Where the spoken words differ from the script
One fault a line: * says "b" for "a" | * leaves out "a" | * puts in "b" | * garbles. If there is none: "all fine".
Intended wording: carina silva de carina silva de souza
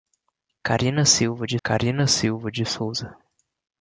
all fine